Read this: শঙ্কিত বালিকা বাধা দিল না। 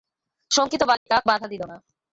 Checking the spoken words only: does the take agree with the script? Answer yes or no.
yes